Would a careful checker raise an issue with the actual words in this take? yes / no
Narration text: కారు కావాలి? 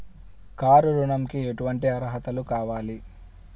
yes